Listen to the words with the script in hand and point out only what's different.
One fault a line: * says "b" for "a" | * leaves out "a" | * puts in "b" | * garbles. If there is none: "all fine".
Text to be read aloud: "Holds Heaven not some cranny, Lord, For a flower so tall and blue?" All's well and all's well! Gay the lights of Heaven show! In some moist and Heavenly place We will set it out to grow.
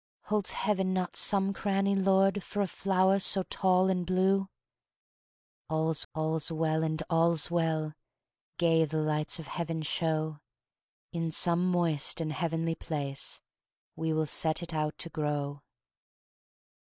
* puts in "all's"